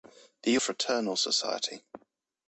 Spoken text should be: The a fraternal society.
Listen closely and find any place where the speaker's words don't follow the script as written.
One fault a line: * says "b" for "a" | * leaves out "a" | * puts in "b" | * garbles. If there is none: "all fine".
all fine